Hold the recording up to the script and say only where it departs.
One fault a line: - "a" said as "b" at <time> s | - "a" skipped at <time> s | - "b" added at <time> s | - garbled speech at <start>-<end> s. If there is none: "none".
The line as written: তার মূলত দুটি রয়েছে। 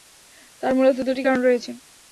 - "কারণ" added at 1.2 s